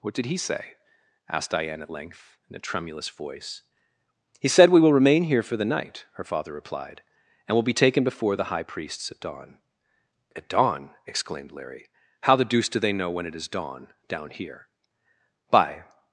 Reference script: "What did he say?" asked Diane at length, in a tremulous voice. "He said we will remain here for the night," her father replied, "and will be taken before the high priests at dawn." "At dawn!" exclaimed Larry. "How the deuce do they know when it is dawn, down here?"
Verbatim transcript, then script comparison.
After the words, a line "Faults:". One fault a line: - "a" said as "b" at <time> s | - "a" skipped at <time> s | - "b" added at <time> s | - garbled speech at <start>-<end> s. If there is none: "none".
"What did he say?" asked Diane at length, in a tremulous voice. "He said we will remain here for the night," her father replied, "and will be taken before the high priests at dawn." "At dawn!" exclaimed Larry. "How the deuce do they know when it is dawn, down here?" "By
Faults:
- "By" added at 15.5 s